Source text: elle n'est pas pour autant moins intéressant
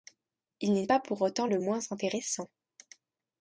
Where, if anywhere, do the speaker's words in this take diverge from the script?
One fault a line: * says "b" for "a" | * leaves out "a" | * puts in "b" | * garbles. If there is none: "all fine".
* says "il" for "elle"
* puts in "le"